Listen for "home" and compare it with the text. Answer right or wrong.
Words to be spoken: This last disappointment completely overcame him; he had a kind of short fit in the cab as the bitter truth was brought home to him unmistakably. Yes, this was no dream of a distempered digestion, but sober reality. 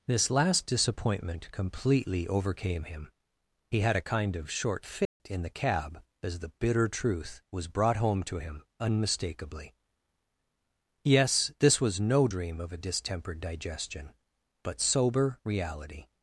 right